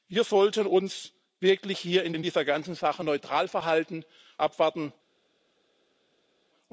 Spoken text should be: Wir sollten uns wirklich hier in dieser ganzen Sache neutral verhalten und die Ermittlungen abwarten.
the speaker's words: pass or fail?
fail